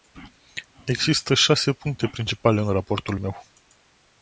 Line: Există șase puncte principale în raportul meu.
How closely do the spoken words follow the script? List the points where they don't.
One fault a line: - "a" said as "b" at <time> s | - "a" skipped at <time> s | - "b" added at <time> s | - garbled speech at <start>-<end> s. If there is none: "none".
none